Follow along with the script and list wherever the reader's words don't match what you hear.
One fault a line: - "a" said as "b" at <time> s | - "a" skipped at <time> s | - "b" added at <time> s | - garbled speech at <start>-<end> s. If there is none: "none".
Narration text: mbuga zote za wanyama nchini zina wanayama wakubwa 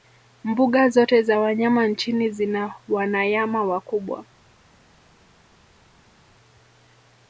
none